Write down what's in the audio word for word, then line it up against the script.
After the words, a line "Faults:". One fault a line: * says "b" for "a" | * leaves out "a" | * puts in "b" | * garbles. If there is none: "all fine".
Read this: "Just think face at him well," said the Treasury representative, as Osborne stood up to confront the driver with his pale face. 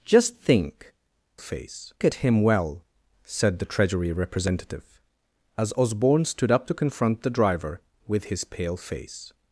"Just think face at him well," said the Treasury representative, as Osborne stood up to confront the driver with his pale face.
Faults:
all fine